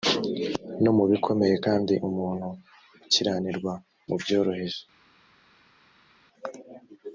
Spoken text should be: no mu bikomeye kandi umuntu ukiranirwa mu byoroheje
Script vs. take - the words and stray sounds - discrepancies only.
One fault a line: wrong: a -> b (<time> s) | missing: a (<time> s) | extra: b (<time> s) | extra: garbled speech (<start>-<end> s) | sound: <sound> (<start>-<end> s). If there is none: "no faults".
no faults